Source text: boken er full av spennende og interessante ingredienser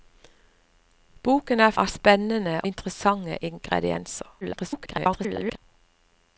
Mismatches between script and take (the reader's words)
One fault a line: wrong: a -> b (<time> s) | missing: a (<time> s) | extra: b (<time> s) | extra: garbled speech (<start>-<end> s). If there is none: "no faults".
missing: full (1.8 s)
missing: og (2.6 s)
extra: garbled speech (4.4-5.6 s)